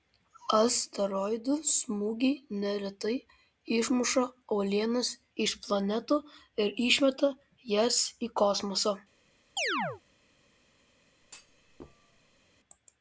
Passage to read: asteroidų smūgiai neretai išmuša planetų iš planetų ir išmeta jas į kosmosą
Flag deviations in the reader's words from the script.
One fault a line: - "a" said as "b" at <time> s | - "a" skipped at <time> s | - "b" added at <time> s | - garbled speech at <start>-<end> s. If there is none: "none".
- "planetų" said as "uolienas" at 4.6 s